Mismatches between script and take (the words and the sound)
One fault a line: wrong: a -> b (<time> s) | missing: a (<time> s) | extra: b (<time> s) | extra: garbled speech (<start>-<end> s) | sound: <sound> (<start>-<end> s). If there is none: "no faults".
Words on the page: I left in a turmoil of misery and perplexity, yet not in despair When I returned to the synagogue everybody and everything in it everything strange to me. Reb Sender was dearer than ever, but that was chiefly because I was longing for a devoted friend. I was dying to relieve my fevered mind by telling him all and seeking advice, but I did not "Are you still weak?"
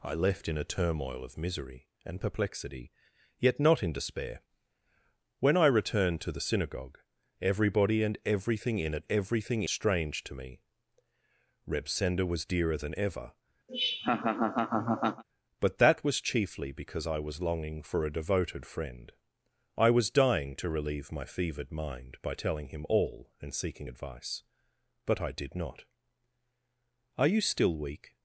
sound: laugh (13.7-15.2 s)